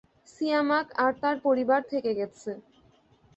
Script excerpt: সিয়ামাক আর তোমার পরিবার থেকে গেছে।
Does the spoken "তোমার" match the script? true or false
false